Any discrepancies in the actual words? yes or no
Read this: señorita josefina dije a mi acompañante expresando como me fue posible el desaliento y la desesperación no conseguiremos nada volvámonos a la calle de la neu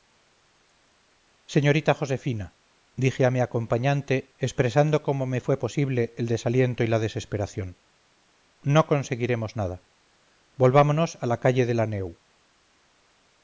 no